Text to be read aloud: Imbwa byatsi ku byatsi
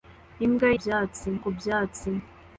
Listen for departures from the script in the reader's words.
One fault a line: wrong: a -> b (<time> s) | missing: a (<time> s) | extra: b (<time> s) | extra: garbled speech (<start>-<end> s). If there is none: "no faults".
no faults